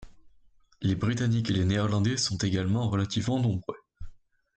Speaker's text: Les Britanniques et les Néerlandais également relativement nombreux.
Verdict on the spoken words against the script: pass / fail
fail